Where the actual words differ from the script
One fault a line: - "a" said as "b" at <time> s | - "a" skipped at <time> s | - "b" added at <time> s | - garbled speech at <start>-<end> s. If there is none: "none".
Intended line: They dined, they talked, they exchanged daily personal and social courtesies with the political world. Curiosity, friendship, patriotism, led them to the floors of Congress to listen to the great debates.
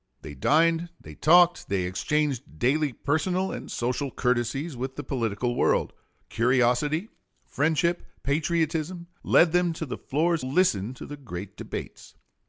- "of Congress to" skipped at 10.4 s